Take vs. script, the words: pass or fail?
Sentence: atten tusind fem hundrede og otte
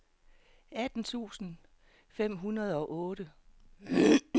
pass